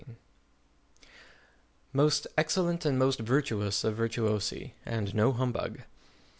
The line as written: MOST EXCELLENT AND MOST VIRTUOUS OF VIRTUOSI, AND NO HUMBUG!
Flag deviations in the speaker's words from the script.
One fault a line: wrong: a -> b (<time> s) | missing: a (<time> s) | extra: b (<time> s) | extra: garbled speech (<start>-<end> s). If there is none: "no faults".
no faults